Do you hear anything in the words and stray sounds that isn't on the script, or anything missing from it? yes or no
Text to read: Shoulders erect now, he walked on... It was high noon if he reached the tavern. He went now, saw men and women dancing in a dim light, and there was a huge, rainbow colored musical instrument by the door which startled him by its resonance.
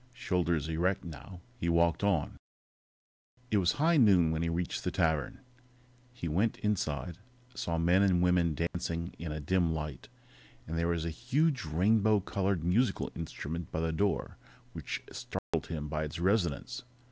yes